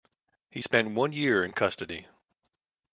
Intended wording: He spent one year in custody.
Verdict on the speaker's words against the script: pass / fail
pass